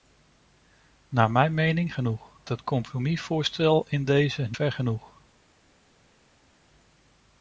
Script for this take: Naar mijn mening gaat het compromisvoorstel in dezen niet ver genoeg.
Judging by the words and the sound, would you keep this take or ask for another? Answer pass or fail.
fail